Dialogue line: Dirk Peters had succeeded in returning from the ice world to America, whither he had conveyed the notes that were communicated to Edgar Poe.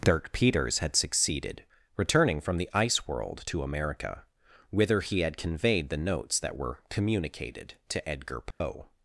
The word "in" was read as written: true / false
false